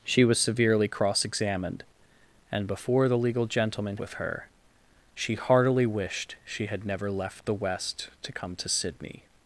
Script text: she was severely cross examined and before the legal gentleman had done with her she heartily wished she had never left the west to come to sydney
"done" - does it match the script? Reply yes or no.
no